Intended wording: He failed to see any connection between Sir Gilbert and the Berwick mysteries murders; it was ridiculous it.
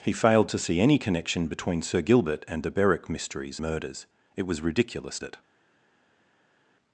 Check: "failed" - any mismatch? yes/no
no